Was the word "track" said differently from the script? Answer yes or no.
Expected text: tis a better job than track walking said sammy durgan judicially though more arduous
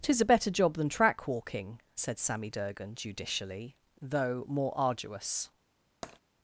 no